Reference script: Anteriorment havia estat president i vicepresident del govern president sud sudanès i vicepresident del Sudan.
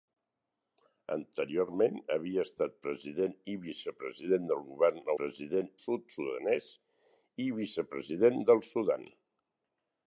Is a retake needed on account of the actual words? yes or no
no